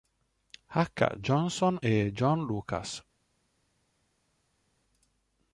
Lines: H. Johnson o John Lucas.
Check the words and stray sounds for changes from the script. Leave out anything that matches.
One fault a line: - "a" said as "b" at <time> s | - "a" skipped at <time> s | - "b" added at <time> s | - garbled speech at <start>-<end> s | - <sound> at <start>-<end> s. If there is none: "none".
- "o" said as "e" at 1.8 s